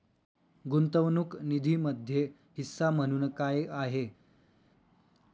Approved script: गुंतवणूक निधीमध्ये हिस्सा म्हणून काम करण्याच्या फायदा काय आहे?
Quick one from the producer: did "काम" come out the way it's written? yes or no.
no